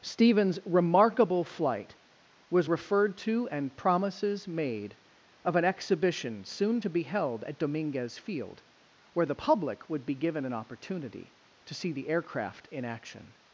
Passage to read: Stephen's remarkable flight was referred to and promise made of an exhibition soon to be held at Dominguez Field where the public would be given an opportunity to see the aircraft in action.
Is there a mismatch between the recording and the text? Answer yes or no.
yes